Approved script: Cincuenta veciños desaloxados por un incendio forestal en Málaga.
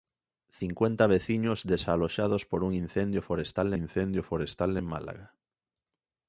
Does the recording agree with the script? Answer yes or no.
no